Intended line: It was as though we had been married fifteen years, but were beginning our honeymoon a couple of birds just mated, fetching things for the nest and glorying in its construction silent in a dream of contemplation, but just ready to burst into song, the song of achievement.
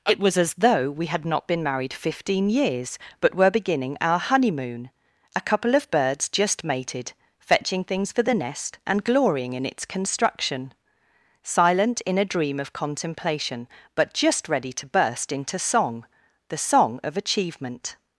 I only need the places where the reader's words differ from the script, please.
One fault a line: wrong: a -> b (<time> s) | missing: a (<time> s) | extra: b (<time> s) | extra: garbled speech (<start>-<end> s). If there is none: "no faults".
extra: not (1.2 s)